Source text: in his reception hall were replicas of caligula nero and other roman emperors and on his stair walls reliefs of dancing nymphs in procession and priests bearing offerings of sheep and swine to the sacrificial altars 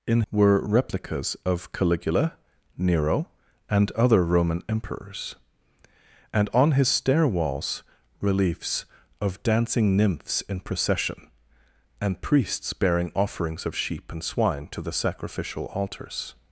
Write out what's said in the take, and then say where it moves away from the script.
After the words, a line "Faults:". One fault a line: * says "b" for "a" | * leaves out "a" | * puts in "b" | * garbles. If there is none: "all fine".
in were replicas of caligula nero and other roman emperors and on his stair walls reliefs of dancing nymphs in procession and priests bearing offerings of sheep and swine to the sacrificial altars
Faults:
* leaves out "his reception hall"